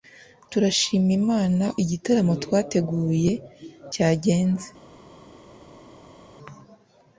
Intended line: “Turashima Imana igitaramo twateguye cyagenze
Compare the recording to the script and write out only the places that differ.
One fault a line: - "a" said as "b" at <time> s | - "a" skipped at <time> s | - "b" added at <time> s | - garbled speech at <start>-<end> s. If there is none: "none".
none